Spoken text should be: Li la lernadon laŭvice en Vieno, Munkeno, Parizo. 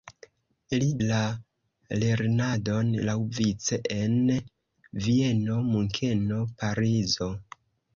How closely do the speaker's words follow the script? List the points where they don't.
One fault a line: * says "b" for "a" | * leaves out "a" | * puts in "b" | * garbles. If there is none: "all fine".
all fine